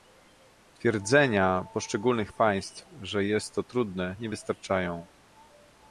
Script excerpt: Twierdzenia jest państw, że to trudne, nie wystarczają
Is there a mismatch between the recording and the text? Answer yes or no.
yes